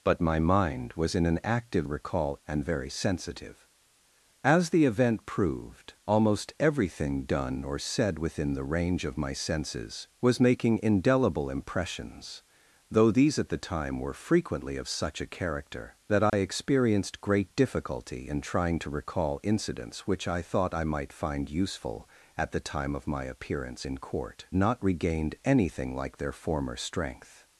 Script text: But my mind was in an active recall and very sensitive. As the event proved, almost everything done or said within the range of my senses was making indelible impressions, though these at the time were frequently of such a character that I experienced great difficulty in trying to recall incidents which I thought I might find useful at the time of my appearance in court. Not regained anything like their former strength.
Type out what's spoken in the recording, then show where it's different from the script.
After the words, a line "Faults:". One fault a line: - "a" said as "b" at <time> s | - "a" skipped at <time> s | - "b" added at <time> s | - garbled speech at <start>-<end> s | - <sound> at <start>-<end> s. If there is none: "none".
But my mind was in an active recall and very sensitive. As the event proved, almost everything done or said within the range of my senses was making indelible impressions, though these at the time were frequently of such a character that I experienced great difficulty in trying to recall incidents which I thought I might find useful at the time of my appearance in court. Not regained anything like their former strength.
Faults:
- dropout at 16.3-16.3 s